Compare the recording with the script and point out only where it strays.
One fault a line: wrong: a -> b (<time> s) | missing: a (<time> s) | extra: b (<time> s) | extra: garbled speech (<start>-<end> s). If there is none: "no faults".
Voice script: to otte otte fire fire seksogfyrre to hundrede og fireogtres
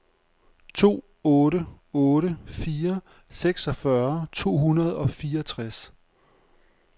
missing: fire (3.0 s)